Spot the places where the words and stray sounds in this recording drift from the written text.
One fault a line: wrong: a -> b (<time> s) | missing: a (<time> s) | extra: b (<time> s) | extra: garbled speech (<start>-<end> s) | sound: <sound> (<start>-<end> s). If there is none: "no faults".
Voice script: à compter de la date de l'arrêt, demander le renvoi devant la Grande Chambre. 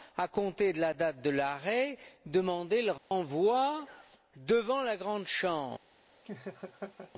sound: dropout (3.0-3.1 s)
sound: laugh (6.2-7.1 s)